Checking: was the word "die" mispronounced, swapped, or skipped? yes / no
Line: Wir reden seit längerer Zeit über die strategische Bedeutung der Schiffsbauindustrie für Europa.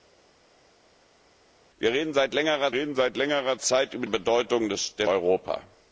yes